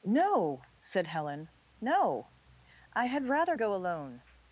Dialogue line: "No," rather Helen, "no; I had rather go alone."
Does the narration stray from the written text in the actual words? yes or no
yes